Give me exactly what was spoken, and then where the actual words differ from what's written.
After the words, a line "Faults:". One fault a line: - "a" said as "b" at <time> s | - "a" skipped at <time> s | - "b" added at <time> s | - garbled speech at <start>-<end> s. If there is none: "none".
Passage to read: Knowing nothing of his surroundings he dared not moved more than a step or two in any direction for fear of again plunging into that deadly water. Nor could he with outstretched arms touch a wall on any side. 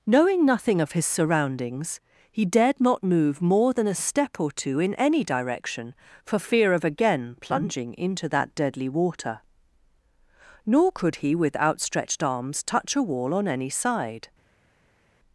Knowing nothing of his surroundings he dared not move more than a step or two in any direction for fear of again plunging into that deadly water. Nor could he with outstretched arms touch a wall on any side.
Faults:
- "moved" said as "move" at 3.0 s